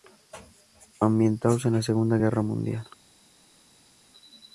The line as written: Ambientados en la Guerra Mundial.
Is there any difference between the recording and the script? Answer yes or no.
yes